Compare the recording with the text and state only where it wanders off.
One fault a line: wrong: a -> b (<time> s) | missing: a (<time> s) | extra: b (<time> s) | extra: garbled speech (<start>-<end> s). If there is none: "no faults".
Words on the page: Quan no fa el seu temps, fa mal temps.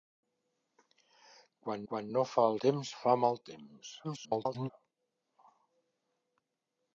extra: quan (1.9 s)
missing: seu (2.6 s)
extra: garbled speech (4.0-4.7 s)